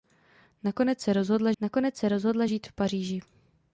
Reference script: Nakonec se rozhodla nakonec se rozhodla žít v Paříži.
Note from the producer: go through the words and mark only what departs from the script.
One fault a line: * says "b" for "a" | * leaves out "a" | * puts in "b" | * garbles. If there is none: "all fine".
all fine